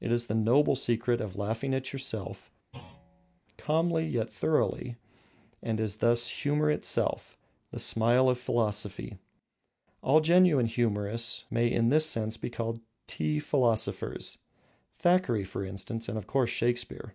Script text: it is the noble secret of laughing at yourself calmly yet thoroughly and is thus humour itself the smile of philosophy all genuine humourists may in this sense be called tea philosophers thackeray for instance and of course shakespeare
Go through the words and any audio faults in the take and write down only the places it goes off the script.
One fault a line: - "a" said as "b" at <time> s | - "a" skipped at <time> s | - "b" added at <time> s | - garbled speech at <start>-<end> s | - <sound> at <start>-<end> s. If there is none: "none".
- thud at 2.7-3.4 s